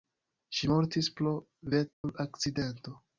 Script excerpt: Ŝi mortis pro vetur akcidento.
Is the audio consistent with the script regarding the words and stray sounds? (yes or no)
no